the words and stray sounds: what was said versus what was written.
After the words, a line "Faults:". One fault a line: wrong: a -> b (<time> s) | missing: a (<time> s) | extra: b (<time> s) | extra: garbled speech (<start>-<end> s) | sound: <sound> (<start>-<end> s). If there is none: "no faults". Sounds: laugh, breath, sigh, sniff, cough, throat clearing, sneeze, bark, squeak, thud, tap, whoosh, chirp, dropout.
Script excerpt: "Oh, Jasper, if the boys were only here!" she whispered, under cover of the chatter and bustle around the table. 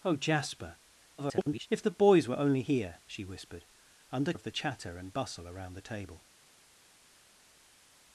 "Oh, Jasper, [garbled] if the boys were only here!" she whispered, under of the chatter and bustle around the table.
Faults:
extra: garbled speech (1.2-1.7 s)
missing: cover (4.3 s)